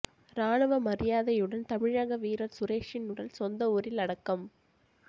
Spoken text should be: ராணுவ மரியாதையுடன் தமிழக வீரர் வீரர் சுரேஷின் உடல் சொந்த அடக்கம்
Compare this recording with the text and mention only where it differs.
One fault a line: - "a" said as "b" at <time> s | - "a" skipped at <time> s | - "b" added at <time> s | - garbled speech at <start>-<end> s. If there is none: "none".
- "வீரர்" skipped at 2.6 s
- "ஊரில்" added at 3.7 s